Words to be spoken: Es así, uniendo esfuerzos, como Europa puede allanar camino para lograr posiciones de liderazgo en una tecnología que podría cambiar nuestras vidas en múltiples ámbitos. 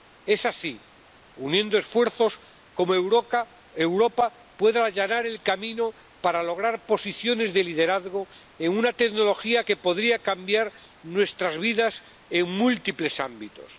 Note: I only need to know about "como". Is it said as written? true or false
true